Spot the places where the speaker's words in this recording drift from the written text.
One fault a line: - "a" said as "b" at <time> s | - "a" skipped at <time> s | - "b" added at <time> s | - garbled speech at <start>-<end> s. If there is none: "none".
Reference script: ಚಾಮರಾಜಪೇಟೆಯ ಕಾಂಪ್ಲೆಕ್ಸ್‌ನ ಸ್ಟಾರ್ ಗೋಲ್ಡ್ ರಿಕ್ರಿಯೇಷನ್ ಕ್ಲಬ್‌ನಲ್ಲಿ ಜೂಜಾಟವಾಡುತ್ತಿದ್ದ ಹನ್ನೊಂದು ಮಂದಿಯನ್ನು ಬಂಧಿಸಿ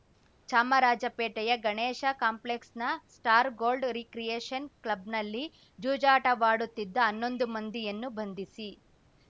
- "ಗಣೇಶ" added at 1.6 s